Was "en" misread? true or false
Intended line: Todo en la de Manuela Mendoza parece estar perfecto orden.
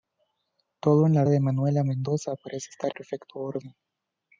false